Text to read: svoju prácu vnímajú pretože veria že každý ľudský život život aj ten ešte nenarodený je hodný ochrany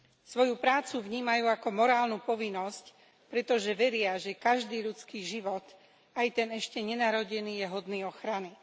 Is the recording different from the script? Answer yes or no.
yes